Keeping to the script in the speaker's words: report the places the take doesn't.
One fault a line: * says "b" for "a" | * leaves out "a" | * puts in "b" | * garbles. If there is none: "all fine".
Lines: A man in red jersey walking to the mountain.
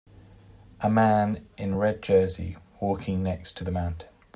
* puts in "next"